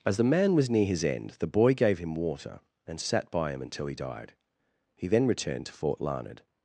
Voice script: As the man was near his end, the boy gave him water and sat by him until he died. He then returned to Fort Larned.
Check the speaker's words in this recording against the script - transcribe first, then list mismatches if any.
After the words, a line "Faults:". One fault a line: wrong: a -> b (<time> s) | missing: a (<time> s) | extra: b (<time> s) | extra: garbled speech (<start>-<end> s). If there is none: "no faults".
As the man was near his end, the boy gave him water and sat by him until he died. He then returned to Fort Larned.
Faults:
no faults